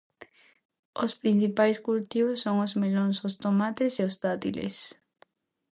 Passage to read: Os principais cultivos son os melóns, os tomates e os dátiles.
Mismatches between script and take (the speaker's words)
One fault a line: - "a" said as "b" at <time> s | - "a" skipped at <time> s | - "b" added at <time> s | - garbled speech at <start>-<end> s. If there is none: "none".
none